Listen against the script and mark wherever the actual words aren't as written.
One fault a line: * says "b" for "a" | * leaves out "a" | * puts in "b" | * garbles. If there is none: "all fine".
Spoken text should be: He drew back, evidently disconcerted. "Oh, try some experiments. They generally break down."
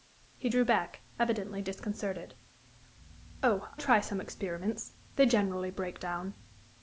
all fine